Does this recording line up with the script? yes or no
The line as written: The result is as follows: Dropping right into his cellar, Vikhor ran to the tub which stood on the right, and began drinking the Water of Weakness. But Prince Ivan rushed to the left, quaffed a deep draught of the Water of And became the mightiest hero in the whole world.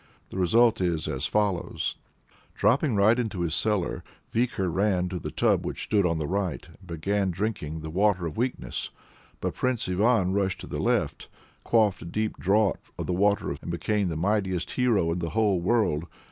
yes